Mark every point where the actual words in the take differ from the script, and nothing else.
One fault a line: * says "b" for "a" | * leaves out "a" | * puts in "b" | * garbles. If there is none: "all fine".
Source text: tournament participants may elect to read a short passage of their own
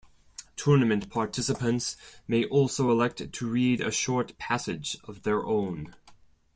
* puts in "also"